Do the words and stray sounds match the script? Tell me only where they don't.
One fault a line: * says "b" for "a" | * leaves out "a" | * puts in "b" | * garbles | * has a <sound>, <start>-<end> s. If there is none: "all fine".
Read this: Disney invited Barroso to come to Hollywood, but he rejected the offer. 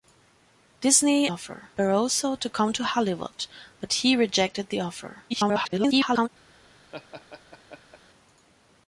* says "offer" for "invited"
* garbles
* has a laugh, 6.9-8.0 s